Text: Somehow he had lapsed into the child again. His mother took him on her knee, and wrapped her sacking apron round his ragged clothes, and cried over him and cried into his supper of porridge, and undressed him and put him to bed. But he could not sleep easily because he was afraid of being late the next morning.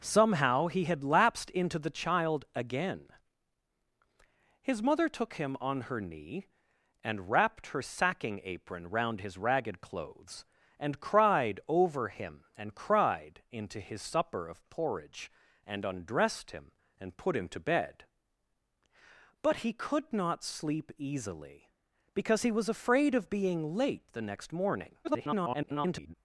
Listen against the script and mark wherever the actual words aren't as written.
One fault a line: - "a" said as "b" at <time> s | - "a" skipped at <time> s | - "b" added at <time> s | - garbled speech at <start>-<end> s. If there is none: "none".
- garbled speech at 25.0-26.1 s